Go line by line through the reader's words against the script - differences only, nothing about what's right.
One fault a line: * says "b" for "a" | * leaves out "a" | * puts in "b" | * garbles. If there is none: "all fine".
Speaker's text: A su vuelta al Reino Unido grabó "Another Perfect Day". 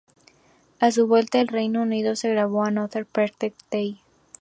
* puts in "se"